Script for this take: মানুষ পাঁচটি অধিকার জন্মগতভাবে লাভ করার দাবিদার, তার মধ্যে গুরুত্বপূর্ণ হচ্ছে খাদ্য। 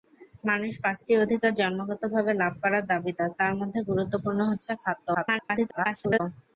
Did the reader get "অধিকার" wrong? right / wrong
right